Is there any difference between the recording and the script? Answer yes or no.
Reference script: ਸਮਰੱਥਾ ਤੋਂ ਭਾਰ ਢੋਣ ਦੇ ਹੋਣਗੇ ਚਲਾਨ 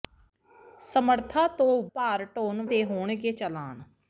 no